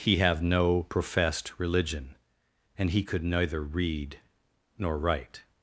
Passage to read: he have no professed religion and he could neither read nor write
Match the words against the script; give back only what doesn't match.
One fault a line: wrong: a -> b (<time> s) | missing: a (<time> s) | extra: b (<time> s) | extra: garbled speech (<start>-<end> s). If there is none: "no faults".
no faults